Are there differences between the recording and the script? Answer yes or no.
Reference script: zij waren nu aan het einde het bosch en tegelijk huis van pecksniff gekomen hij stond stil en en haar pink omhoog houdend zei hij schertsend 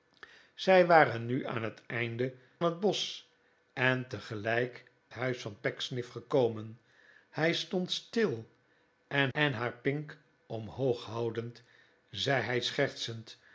no